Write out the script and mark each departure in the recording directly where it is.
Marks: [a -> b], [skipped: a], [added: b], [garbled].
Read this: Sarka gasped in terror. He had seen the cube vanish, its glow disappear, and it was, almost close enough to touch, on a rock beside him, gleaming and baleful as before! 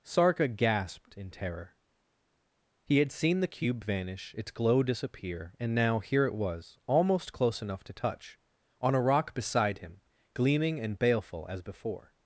Sarka gasped in terror. He had seen the cube vanish, its glow disappear, and [added: now here] it was, almost close enough to touch, on a rock beside him, gleaming and baleful as before!